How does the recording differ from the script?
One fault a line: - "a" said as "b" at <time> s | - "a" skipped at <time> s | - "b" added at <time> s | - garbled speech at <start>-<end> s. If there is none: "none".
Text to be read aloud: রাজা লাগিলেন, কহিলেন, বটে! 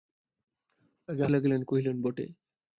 none